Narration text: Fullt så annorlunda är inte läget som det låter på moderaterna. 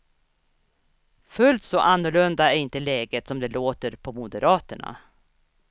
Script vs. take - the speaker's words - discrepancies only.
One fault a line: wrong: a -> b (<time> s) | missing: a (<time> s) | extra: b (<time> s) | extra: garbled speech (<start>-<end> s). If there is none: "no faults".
no faults